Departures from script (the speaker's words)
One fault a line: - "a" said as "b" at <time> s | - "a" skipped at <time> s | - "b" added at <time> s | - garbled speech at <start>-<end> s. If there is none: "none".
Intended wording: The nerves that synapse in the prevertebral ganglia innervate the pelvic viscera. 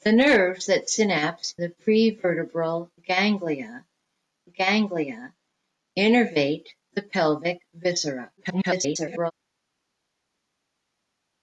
- "in" skipped at 1.6 s
- "ganglia" added at 4.5 s
- garbled speech at 8.4-9.3 s